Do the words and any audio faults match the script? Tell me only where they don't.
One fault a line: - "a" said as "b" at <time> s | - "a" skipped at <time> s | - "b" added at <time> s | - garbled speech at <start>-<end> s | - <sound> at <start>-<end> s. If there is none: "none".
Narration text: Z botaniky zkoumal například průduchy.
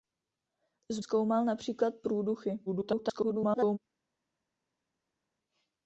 - "botaniky" skipped at 1.0 s
- garbled speech at 2.7-3.8 s